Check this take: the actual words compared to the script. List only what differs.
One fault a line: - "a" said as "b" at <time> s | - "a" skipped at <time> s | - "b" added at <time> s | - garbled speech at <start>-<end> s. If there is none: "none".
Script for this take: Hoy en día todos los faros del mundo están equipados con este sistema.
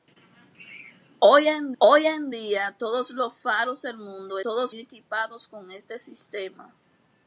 - "hoy en" added at 1.8 s
- "están" said as "todos" at 4.4 s